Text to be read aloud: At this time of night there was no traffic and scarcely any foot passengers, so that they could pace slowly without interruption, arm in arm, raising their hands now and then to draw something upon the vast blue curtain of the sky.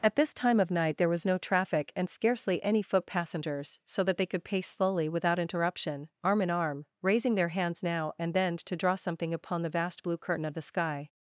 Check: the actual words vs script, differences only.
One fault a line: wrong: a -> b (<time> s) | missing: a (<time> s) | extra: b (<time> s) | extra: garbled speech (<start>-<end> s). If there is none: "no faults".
no faults